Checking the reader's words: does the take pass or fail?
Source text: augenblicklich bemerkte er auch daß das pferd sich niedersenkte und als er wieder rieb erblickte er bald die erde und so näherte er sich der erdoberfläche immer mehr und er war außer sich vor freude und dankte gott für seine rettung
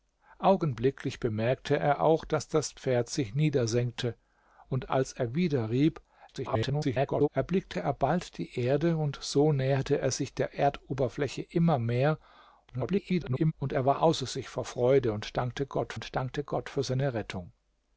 fail